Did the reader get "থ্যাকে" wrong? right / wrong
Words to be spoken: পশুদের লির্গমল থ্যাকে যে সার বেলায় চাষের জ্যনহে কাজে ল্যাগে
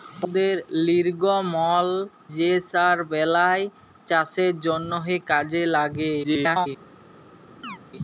wrong